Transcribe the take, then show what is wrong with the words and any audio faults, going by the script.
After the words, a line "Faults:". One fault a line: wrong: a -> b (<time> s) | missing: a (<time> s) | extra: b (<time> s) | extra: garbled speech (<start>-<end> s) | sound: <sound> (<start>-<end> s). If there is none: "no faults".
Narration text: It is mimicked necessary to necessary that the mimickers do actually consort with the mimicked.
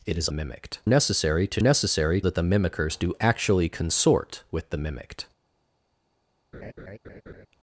It is mimicked necessary to necessary that the mimickers do actually consort with the mimicked.
Faults:
sound: laugh (6.5-7.5 s)